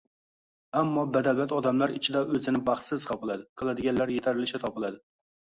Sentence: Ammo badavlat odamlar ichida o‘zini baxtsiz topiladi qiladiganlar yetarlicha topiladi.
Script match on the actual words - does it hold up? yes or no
yes